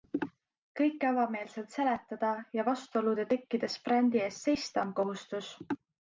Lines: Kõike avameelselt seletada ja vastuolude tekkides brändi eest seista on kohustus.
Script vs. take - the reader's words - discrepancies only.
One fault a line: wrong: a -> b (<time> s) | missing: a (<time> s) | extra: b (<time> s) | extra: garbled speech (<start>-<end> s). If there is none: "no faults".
no faults